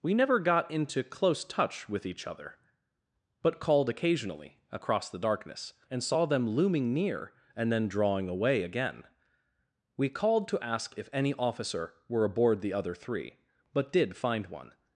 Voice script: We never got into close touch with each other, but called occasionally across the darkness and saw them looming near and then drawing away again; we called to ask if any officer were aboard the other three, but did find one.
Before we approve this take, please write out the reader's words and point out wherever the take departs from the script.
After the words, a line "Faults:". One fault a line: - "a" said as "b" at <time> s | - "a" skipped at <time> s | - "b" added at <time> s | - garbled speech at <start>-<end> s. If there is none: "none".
We never got into close touch with each other, but called occasionally across the darkness and saw them looming near and then drawing away again; we called to ask if any officer were aboard the other three, but did find one.
Faults:
none